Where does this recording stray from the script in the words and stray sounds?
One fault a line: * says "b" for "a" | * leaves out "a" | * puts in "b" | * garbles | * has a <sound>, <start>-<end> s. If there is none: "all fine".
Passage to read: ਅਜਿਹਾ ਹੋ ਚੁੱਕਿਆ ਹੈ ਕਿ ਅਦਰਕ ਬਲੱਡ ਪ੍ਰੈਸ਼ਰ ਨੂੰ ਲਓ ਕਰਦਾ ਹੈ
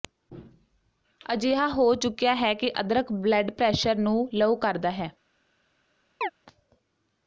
* has a chirp, 6.2-6.3 s